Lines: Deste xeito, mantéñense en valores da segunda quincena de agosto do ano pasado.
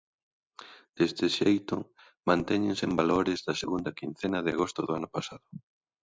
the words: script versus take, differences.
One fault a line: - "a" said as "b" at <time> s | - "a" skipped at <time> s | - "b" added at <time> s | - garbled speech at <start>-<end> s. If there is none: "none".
none